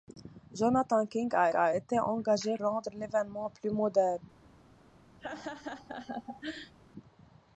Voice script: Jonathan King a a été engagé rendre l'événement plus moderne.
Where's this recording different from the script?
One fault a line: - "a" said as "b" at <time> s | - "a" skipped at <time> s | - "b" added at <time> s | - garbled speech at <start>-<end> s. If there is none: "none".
none